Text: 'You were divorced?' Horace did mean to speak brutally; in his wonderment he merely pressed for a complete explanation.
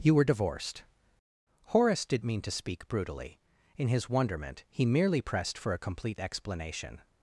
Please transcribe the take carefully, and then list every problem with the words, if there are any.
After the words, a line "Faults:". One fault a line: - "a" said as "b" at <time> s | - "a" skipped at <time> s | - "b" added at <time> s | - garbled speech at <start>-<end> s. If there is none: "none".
'You were divorced?' Horace did mean to speak brutally; in his wonderment he merely pressed for a complete explanation.
Faults:
none